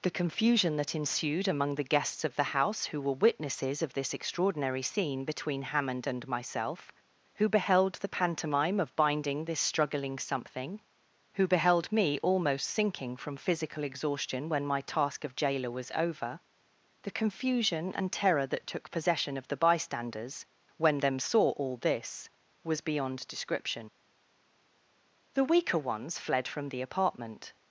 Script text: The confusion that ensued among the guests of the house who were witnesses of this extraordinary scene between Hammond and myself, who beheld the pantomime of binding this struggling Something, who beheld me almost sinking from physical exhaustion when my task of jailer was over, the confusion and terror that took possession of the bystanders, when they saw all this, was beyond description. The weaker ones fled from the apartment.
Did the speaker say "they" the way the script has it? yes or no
no